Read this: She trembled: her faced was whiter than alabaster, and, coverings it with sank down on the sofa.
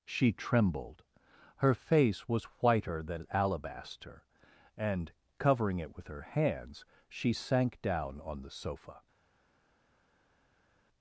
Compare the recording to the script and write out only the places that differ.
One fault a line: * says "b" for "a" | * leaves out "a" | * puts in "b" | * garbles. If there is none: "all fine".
* says "face" for "faced"
* says "covering" for "coverings"
* puts in "her hands she"